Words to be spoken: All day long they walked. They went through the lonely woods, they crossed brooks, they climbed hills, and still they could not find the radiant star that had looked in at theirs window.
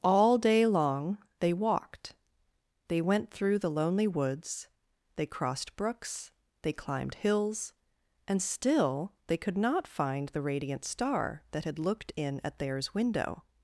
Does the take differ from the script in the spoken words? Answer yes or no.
no